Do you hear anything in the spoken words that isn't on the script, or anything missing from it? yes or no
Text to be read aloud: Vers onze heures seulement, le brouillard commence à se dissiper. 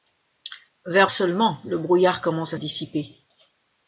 yes